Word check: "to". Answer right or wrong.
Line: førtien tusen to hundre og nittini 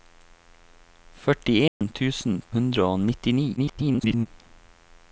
wrong